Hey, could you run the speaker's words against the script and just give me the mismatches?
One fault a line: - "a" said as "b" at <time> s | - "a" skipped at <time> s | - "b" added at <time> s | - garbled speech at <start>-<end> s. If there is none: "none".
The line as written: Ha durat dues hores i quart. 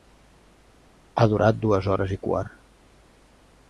none